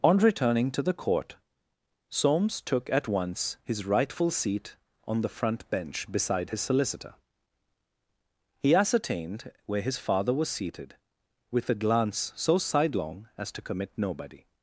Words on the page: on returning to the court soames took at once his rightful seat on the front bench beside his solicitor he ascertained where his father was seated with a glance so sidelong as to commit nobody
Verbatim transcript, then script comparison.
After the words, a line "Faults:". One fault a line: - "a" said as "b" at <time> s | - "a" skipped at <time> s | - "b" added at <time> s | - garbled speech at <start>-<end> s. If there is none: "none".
on returning to the court soames took at once his rightful seat on the front bench beside his solicitor he ascertained where his father was seated with a glance so sidelong as to commit nobody
Faults:
none